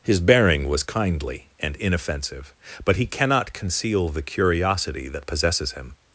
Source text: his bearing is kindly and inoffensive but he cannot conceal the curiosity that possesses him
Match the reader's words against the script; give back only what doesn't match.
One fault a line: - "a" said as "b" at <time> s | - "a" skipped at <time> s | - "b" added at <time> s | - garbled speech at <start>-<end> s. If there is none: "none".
- "is" said as "was" at 0.7 s